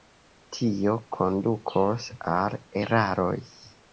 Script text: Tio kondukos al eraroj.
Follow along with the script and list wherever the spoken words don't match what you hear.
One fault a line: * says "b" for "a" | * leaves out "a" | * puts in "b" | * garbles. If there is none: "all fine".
all fine